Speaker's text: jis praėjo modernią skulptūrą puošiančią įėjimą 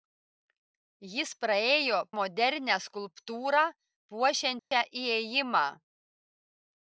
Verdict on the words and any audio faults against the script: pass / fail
fail